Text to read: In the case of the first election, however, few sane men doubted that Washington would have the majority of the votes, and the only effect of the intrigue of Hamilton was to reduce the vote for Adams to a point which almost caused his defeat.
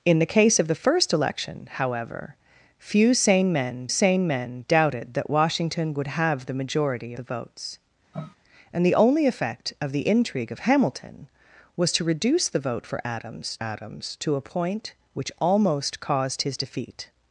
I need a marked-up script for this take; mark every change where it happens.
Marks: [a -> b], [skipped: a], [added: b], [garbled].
In the case of the first election, however, few sane men [added: sane men] doubted that Washington would have the majority [skipped: of] the votes, and the only effect of the intrigue of Hamilton was to reduce the vote for Adams [added: Adams] to a point which almost caused his defeat.